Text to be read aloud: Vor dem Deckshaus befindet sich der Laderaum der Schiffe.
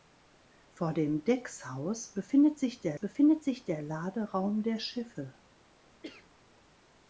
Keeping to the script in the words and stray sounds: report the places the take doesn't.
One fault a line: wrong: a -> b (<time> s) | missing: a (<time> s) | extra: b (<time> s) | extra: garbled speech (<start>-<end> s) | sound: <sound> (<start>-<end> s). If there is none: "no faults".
extra: befindet sich der (2.9 s)
sound: cough (6.0-6.3 s)